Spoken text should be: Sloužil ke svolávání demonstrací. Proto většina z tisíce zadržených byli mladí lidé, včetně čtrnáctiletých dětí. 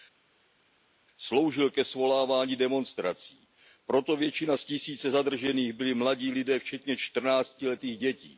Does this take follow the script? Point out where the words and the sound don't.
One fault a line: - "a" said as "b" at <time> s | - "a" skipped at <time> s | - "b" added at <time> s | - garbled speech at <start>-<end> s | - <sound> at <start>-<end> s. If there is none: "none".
none